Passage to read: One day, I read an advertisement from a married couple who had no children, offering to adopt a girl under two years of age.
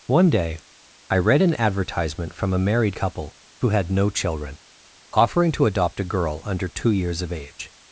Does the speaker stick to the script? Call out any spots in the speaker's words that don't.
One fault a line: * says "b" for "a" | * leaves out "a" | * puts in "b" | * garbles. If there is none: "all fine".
all fine